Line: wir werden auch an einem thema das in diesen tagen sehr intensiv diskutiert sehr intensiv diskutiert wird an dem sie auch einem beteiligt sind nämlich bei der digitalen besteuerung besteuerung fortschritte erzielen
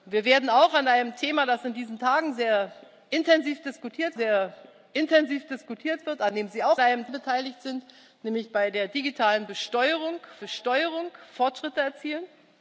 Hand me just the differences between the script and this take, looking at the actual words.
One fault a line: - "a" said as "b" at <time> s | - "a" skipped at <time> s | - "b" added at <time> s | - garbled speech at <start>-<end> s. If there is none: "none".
none